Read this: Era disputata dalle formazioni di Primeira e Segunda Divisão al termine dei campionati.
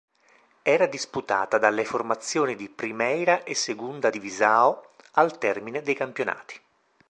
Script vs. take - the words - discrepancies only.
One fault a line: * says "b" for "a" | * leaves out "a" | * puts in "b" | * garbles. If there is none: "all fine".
all fine